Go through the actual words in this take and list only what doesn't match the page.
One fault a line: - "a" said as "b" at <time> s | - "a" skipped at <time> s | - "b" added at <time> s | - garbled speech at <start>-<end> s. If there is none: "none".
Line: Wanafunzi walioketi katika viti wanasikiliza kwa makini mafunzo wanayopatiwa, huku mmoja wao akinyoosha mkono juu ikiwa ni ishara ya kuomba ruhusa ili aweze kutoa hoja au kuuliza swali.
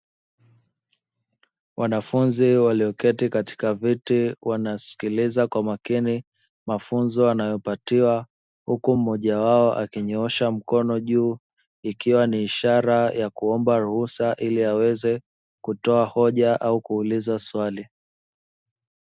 none